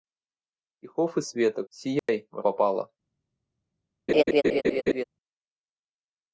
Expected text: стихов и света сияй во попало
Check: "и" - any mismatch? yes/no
no